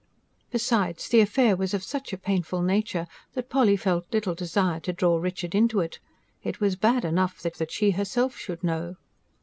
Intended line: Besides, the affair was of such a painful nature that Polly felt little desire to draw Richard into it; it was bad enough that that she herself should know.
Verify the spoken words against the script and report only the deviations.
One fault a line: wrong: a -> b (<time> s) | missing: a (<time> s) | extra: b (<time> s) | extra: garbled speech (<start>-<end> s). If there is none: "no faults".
no faults